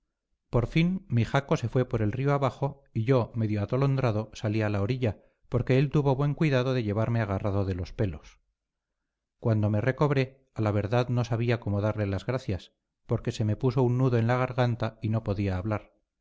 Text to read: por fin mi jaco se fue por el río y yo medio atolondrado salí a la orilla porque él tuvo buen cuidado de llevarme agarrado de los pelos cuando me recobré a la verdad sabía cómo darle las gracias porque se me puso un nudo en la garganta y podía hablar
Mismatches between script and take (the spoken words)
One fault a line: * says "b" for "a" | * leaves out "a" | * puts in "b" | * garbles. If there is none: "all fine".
* puts in "abajo"
* puts in "no"
* puts in "no"